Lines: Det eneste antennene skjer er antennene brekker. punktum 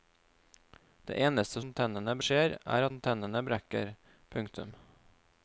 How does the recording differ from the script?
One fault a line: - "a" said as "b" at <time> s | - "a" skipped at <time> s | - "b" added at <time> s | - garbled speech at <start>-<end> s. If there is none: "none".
none